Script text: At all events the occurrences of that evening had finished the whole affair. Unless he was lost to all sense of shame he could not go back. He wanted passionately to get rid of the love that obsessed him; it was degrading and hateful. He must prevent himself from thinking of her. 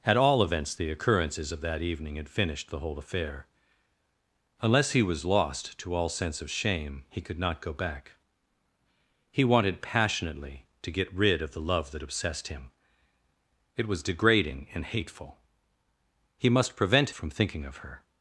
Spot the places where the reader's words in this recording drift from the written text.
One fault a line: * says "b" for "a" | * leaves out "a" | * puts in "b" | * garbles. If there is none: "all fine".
* leaves out "himself"